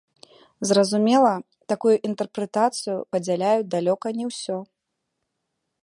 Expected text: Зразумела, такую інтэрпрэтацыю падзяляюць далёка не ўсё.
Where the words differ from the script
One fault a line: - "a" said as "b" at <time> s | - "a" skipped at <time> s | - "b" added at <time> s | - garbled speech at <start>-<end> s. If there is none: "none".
none